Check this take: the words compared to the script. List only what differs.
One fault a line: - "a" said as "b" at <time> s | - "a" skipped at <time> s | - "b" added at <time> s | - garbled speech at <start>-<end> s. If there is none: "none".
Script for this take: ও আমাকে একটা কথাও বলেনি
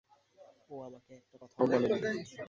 none